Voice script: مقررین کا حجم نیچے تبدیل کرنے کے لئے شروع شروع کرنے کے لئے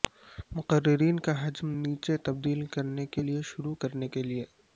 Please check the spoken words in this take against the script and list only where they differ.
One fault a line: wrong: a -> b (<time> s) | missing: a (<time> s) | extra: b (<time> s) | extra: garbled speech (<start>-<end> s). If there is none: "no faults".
missing: شروع (3.7 s)